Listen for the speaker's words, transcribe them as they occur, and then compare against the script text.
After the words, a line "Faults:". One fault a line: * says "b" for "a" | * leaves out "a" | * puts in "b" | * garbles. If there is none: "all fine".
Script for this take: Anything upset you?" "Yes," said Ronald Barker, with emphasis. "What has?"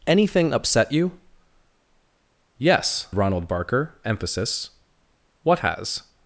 Anything upset you?" "Yes," Ronald Barker, emphasis. "What has?"
Faults:
* leaves out "said"
* leaves out "with"